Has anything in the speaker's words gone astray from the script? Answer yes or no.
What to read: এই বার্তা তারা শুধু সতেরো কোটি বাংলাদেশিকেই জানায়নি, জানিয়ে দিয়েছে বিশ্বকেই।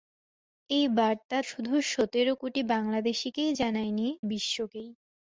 yes